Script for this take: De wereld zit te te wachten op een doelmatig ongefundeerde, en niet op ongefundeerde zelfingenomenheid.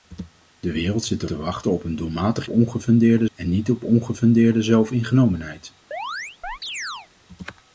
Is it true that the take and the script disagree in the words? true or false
false